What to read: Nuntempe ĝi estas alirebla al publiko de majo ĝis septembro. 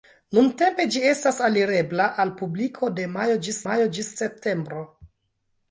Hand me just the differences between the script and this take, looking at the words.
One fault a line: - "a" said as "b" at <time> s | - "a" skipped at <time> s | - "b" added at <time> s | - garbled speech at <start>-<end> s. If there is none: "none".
- "majo ĝis" added at 3.7 s